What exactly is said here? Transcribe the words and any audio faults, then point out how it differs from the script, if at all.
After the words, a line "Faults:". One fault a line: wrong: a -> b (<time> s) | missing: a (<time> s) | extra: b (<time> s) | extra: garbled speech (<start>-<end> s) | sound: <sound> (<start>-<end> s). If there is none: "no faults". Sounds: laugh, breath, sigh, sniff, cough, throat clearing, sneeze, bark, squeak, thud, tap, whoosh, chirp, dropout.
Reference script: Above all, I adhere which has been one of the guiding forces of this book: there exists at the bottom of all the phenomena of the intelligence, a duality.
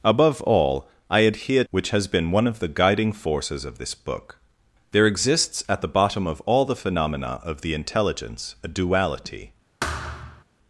Above all, I adhere which has been one of the guiding forces of this book: there exists at the bottom of all the phenomena of the intelligence, a duality.
Faults:
sound: thud (9.8-10.4 s)